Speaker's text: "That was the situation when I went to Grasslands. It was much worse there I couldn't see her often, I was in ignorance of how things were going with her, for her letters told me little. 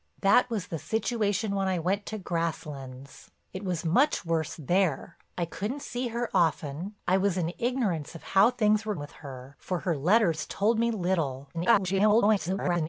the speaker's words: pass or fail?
fail